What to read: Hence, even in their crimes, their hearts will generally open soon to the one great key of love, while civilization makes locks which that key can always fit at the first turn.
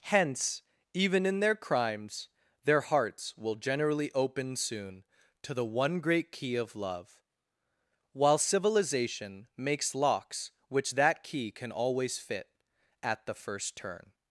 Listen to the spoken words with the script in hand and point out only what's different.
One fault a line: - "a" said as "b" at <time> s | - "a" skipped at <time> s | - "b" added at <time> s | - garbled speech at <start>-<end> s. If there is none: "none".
none